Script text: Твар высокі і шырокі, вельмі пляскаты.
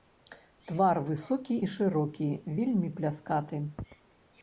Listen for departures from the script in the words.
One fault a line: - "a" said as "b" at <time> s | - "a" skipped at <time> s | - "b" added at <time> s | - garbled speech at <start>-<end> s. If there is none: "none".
none